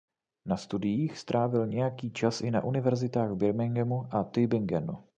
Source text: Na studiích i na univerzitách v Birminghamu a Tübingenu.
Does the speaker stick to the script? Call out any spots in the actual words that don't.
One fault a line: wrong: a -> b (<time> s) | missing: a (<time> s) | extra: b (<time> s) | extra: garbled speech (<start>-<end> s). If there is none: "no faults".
extra: strávil nějaký čas (1.2 s)